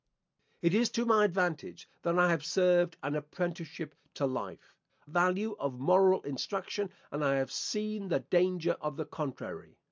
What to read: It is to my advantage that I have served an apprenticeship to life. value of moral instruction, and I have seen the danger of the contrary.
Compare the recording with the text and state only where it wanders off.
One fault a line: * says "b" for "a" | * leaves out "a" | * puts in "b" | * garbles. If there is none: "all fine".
all fine